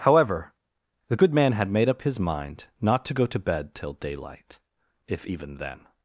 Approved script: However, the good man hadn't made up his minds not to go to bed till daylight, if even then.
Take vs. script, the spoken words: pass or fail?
fail